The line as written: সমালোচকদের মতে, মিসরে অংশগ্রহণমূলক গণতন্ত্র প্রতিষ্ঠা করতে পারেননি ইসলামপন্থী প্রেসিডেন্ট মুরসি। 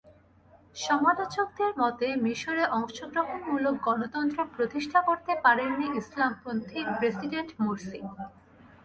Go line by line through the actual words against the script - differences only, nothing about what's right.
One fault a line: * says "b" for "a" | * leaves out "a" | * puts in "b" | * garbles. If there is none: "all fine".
all fine